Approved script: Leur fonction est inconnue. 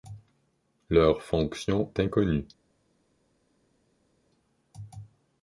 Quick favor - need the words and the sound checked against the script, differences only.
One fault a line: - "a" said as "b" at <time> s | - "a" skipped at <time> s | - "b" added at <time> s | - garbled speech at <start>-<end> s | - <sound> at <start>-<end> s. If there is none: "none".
- "est" skipped at 1.9 s